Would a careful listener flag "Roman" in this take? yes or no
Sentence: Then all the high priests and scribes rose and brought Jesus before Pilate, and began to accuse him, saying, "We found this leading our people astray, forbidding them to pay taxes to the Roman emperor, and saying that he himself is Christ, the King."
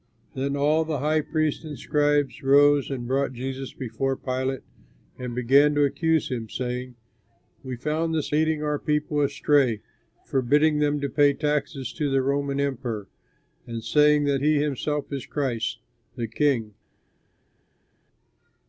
no